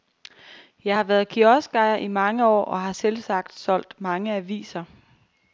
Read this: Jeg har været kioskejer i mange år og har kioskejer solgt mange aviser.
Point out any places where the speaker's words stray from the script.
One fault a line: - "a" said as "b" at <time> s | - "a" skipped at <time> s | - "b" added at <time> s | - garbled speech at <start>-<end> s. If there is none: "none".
- "kioskejer" said as "selvsagt" at 2.9 s